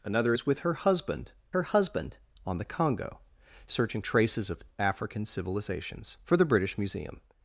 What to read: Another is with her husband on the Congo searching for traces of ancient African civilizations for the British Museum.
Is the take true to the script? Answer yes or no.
no